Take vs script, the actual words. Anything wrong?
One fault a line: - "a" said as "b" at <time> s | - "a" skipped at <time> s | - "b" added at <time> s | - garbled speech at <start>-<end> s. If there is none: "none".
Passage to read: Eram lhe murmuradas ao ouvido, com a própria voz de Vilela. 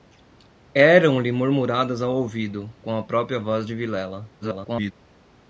- garbled speech at 4.4-4.9 s